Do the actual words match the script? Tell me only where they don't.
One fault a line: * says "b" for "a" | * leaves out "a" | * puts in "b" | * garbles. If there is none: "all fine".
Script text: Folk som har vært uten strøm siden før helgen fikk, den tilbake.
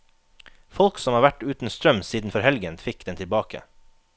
all fine